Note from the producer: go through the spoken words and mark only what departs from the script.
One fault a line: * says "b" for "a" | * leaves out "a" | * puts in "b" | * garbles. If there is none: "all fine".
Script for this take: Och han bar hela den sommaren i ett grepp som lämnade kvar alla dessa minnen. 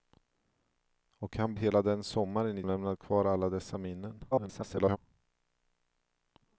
* leaves out "bar"
* leaves out "ett grepp som"
* garbles